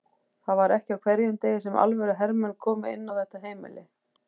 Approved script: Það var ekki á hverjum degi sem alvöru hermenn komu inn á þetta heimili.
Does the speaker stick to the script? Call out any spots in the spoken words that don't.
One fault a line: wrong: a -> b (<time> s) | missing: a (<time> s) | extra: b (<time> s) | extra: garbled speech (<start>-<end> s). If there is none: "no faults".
no faults